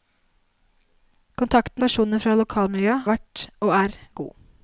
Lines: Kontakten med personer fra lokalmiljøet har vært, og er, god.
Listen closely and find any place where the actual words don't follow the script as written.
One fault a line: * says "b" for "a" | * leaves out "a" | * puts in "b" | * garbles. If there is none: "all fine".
* leaves out "med"
* leaves out "har"